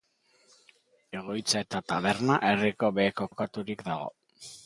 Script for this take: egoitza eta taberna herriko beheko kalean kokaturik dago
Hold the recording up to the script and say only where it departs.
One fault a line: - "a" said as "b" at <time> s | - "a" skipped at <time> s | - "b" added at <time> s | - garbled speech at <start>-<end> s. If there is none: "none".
- "kalean" skipped at 3.3 s